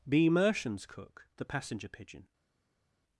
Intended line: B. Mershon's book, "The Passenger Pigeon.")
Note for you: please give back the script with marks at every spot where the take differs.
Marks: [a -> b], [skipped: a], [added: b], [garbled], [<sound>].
B. Mershon's [book, -> cook] "The Passenger Pigeon.")